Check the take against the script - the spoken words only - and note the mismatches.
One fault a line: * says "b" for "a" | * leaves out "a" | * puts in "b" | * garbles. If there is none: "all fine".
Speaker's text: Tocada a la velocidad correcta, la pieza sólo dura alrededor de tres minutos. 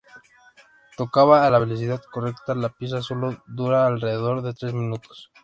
all fine